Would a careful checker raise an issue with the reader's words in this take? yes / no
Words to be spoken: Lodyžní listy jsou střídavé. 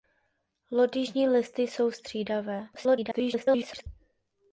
yes